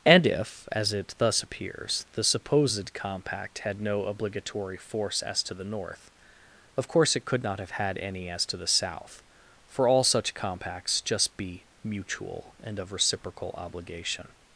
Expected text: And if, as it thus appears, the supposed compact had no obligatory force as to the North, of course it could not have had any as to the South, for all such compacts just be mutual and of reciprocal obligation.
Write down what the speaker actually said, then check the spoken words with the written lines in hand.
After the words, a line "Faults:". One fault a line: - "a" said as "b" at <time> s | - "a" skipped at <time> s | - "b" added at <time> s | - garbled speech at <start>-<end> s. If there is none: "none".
And if, as it thus appears, the supposed compact had no obligatory force as to the North, of course it could not have had any as to the South, for all such compacts just be mutual and of reciprocal obligation.
Faults:
none